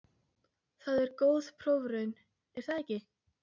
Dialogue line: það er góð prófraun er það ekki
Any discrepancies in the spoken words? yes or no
no